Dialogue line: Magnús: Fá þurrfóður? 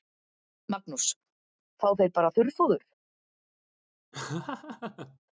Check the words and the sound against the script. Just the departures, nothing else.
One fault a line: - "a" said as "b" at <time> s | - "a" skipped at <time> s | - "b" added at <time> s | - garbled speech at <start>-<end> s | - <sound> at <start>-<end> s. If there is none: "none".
- "þeir bara" added at 2.0 s
- laugh at 4.1-5.2 s